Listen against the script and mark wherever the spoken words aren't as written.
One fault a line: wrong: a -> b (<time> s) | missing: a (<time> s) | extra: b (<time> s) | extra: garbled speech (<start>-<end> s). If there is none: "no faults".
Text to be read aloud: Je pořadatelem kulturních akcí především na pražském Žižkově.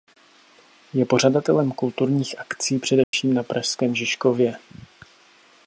no faults